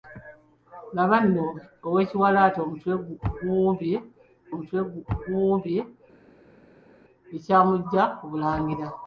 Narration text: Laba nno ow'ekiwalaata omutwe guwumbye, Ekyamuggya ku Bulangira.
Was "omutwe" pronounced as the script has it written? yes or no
yes